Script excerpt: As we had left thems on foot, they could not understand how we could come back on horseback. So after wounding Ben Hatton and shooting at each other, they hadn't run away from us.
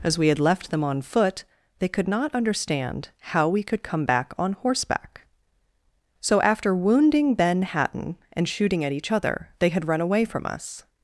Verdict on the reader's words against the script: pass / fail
fail